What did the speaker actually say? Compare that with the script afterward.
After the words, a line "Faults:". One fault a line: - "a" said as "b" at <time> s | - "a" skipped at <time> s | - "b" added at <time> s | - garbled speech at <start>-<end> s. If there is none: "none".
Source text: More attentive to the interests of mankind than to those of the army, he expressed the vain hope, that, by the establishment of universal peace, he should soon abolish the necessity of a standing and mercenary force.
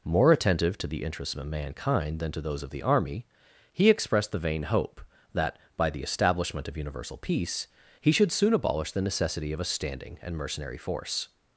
More attentive to the interests of mankind than to those of the army, he expressed the vain hope, that, by the establishment of universal peace, he should soon abolish the necessity of a standing and mercenary force.
Faults:
none